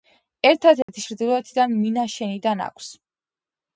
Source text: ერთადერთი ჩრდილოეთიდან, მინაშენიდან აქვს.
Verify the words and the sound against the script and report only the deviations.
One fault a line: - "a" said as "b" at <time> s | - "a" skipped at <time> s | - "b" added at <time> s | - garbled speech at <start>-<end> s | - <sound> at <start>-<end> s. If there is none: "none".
- dropout at 0.8-0.9 s